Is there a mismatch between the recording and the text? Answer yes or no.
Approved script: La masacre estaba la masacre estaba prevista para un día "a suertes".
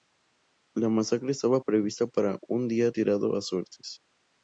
yes